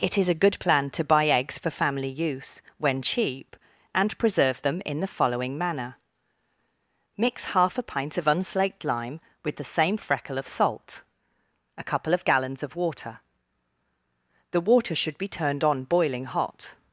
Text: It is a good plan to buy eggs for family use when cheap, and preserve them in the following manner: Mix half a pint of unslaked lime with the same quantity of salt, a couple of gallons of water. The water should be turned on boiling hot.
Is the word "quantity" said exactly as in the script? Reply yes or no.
no